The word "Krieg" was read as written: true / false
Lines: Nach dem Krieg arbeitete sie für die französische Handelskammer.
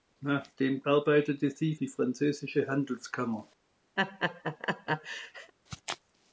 false